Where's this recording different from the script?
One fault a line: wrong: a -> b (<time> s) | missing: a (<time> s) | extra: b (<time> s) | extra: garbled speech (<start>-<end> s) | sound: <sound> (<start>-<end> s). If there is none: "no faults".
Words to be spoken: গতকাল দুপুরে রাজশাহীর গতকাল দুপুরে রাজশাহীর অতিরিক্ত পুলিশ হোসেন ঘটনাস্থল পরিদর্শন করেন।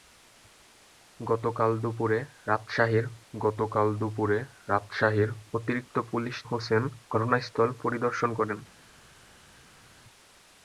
no faults